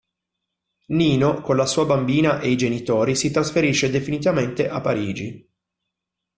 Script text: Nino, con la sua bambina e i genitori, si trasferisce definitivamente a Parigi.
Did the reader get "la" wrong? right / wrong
right